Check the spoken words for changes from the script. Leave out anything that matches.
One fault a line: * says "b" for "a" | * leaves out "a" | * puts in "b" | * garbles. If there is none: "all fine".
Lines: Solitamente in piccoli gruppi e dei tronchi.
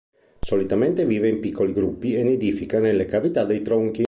* puts in "vive"
* puts in "nidifica nelle cavità"